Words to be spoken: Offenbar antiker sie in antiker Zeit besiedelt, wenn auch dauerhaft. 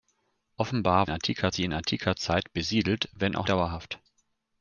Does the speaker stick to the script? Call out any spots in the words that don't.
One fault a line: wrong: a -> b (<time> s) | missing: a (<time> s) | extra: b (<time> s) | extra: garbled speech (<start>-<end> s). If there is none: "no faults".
no faults